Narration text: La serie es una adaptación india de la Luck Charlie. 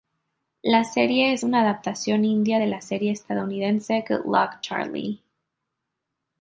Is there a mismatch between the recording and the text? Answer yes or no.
yes